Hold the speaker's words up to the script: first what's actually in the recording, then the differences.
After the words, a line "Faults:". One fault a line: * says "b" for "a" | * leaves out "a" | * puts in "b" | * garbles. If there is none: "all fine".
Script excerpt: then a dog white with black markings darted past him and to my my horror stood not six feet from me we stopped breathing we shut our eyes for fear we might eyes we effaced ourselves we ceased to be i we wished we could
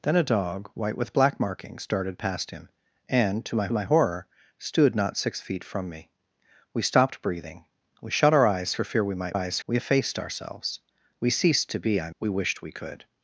then a dog white with black markings darted past him and to my my horror stood not six feet from me we stopped breathing we shut our eyes for fear we might eyes we effaced ourselves we ceased to be i we wished we could
Faults:
all fine